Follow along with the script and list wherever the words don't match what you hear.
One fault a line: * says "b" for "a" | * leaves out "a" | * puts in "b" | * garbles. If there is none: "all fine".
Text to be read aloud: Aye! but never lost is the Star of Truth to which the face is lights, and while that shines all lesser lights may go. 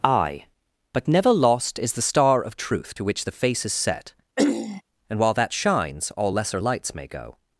* says "set" for "lights"